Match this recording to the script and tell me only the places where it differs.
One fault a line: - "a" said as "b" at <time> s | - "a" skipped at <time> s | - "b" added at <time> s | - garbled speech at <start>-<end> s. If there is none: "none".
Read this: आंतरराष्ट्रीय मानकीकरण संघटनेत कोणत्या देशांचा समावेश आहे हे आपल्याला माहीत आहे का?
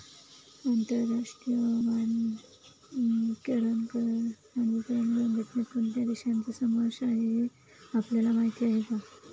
none